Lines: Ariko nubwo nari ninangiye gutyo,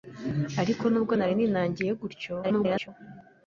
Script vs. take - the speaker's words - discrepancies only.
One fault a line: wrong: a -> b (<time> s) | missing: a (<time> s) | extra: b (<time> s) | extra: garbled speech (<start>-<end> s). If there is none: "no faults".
extra: garbled speech (2.4-2.9 s)